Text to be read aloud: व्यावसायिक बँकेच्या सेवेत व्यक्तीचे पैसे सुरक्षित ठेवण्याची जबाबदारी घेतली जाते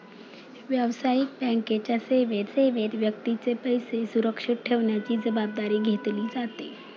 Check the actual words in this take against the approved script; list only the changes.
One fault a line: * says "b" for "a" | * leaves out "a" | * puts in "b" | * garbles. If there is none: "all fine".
* puts in "सेवेत"